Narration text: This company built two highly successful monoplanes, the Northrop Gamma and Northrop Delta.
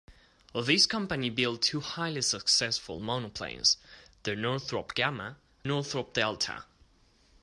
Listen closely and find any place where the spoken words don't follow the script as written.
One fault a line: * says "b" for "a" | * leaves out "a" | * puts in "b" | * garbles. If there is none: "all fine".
* leaves out "and"